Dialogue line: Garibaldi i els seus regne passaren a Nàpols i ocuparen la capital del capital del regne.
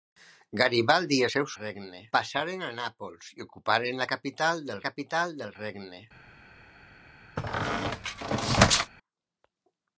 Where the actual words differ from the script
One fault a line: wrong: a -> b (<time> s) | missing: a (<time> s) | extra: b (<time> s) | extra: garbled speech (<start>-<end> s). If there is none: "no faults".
no faults